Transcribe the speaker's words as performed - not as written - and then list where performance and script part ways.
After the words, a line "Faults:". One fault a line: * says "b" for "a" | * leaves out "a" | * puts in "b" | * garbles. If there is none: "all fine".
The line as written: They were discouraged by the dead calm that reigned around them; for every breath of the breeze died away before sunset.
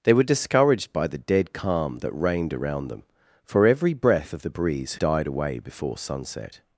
They were discouraged by the dead calm that reigned around them; for every breath of the breeze died away before sunset.
Faults:
all fine